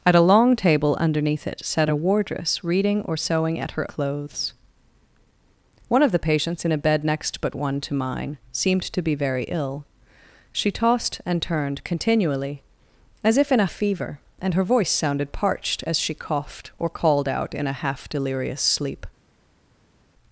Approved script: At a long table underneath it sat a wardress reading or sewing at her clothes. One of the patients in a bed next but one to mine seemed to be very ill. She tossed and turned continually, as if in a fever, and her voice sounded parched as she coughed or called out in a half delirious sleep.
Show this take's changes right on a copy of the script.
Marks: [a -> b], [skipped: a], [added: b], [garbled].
At a long table underneath it sat a wardress reading or sewing at her clothes. One of the patients in a bed next but one to mine seemed to be very ill. She tossed and turned continually, as if in a fever, and her voice sounded parched as she coughed or called out in a half delirious sleep.